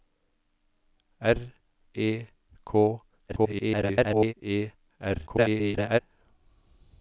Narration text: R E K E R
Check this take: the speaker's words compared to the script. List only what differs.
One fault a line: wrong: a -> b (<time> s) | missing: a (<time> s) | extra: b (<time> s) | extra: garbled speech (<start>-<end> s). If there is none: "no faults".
extra: garbled speech (3.3-4.3 s)
extra: garbled speech (5.3-6.0 s)